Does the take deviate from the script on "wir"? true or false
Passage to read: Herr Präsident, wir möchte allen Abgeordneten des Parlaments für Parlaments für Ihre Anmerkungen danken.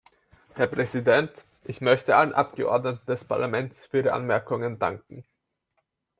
true